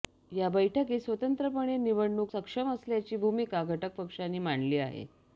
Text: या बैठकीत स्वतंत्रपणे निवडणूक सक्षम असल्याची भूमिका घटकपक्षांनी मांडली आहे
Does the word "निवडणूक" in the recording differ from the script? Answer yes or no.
no